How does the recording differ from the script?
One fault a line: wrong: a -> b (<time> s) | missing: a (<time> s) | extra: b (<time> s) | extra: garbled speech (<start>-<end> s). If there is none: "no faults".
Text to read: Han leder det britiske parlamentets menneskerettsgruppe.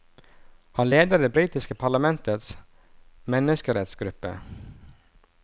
no faults